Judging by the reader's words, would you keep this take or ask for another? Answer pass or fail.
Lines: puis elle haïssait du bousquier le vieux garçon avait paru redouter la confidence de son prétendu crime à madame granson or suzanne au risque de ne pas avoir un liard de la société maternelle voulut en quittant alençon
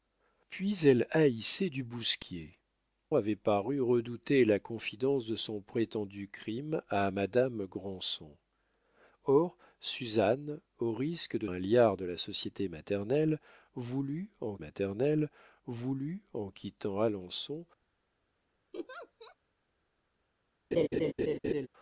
fail